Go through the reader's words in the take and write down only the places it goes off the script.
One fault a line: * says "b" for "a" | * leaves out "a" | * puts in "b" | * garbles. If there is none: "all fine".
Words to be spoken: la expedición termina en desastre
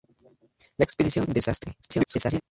* leaves out "termina"
* garbles